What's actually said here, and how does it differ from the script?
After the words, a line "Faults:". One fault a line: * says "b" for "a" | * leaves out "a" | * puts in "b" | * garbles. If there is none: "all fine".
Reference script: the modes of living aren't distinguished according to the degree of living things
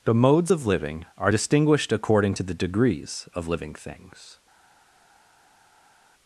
the modes of living are distinguished according to the degrees of living things
Faults:
* says "are" for "aren't"
* says "degrees" for "degree"